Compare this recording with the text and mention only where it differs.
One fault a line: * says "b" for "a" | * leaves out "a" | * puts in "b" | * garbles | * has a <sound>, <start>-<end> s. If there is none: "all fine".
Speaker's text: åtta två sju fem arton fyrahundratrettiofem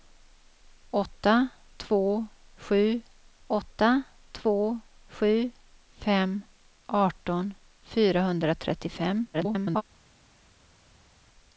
* puts in "åtta två sju"
* garbles